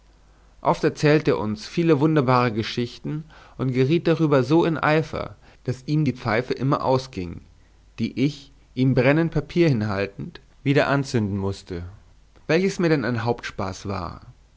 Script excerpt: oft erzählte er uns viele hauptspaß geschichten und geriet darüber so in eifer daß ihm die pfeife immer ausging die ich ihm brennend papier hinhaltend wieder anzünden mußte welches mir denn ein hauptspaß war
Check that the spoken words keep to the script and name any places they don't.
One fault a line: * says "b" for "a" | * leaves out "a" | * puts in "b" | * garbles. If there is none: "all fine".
* says "wunderbare" for "hauptspaß"